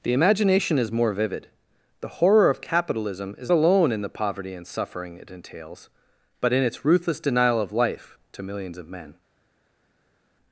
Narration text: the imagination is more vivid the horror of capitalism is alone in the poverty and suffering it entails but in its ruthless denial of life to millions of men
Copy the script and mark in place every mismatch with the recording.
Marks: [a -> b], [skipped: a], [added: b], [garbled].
the imagination is more vivid the horror of capitalism is alone in the poverty and suffering it entails but in its ruthless denial of life to millions of men